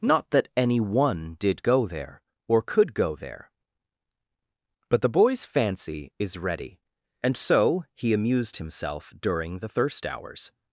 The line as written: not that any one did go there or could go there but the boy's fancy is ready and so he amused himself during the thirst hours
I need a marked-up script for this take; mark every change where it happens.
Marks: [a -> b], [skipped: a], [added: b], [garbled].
not that any one did go there or could go there but the boy's fancy is ready and so he amused himself during the thirst hours